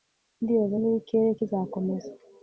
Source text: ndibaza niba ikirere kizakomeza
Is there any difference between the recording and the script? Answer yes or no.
no